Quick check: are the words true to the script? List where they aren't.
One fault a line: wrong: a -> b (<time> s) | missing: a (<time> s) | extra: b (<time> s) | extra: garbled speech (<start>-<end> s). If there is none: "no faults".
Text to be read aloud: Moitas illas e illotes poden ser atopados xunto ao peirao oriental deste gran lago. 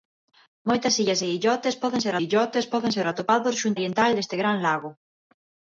extra: illotes poden ser (2.3 s)
missing: ao peirao (3.8 s)